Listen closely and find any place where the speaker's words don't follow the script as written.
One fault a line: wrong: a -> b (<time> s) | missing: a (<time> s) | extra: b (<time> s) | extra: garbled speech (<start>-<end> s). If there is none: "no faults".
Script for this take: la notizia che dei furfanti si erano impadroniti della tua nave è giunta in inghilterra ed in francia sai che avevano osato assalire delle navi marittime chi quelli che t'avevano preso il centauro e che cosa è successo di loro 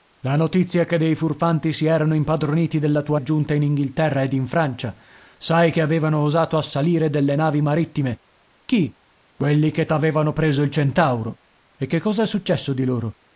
missing: nave (3.2 s)